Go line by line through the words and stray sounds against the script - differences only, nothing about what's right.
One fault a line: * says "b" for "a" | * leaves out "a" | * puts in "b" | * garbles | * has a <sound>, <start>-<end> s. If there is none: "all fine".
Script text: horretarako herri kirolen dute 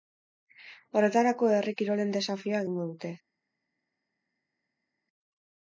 * puts in "desafioa egingo"